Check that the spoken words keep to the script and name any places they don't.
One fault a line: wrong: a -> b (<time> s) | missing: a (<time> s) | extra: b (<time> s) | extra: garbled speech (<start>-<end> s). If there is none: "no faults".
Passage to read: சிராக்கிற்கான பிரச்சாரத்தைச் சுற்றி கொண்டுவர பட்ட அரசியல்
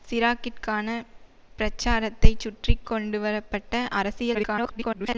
extra: garbled speech (4.3-5.2 s)